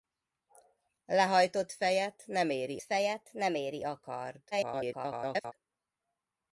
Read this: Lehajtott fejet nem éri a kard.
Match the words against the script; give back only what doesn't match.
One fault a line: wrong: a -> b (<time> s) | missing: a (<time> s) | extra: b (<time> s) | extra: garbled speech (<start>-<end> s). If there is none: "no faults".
extra: fejet nem éri (2.8 s)
extra: garbled speech (4.5-5.5 s)